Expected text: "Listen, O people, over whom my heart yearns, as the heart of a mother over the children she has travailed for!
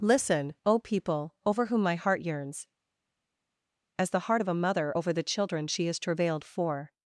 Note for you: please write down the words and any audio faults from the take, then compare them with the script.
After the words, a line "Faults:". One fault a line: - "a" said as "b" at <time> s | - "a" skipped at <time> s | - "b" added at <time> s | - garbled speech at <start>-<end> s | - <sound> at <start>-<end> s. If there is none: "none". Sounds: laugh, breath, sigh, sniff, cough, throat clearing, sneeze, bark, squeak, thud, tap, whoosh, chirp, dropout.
"Listen, O people, over whom my heart yearns, as the heart of a mother over the children she has travailed for!
Faults:
none